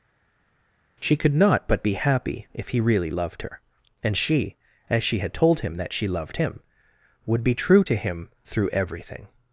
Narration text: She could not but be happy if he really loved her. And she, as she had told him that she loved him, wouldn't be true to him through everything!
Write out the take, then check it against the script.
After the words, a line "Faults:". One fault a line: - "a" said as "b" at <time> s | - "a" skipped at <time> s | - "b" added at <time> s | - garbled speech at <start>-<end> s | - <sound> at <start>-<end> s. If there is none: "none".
She could not but be happy if he really loved her. And she, as she had told him that she loved him, would be true to him through everything!
Faults:
- "wouldn't" said as "would" at 7.3 s